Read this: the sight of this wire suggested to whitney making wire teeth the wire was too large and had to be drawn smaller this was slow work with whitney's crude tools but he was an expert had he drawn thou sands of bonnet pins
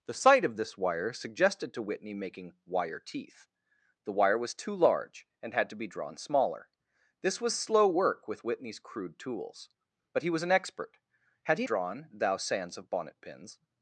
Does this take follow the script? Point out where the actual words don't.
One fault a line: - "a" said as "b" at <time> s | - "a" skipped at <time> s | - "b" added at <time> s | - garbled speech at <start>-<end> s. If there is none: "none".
none